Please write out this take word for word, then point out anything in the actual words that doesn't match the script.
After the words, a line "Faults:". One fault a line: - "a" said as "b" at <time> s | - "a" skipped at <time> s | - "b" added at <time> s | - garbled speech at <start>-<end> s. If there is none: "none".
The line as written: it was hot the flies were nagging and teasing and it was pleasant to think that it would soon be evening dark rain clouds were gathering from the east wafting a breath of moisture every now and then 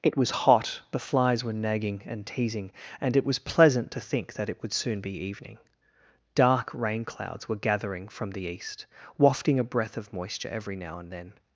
it was hot the flies were nagging and teasing and it was pleasant to think that it would soon be evening dark rain clouds were gathering from the east wafting a breath of moisture every now and then
Faults:
none